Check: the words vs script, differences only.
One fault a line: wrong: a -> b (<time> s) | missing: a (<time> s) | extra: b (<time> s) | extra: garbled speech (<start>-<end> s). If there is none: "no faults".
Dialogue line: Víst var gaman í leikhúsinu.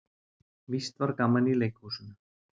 no faults